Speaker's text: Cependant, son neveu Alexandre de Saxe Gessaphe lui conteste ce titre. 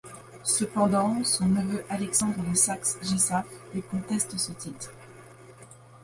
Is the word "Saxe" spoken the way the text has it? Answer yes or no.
yes